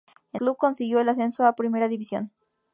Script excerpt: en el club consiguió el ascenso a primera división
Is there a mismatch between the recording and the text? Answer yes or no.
yes